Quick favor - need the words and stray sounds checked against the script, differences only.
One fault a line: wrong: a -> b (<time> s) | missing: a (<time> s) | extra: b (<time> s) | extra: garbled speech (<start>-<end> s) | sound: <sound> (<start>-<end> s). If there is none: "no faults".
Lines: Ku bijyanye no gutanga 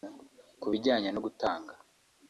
no faults